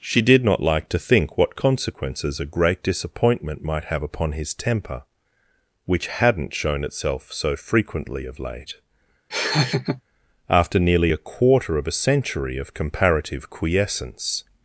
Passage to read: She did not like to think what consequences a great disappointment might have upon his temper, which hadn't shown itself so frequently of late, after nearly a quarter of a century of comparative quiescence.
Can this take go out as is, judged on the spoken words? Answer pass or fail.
pass